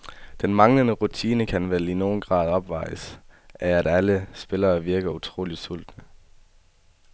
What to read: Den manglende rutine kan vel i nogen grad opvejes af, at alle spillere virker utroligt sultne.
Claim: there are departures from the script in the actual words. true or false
false